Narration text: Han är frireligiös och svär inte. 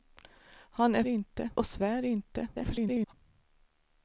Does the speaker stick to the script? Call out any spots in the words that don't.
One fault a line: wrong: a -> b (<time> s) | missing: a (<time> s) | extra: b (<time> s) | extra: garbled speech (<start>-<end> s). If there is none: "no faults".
wrong: frireligiös -> inte (1.0 s)
extra: garbled speech (2.5-3.1 s)